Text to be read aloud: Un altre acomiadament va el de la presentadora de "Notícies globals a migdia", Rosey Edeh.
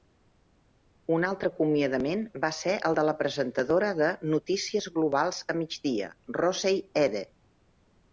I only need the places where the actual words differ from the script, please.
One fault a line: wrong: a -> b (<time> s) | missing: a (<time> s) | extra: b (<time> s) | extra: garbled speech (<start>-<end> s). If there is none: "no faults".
extra: ser (2.6 s)